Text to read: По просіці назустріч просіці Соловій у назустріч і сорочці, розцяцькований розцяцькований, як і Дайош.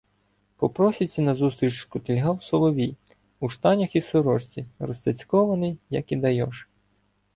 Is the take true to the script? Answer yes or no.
no